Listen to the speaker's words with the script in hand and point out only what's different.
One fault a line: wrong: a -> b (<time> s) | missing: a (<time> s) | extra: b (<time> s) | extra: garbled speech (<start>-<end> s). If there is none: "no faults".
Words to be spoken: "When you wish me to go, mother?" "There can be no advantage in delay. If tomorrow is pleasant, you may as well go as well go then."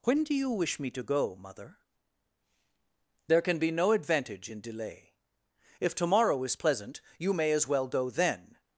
extra: do (0.2 s)
missing: as well go (8.1 s)